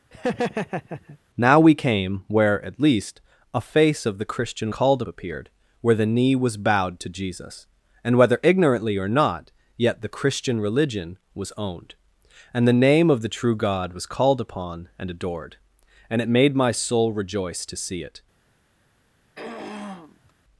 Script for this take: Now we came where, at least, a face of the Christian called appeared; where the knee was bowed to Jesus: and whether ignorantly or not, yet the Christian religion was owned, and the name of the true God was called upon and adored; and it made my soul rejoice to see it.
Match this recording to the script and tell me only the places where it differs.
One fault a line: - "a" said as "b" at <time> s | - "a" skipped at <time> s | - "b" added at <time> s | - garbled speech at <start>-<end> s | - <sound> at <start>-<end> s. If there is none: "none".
- laugh at 0.1-1.2 s
- throat clearing at 19.3-20.3 s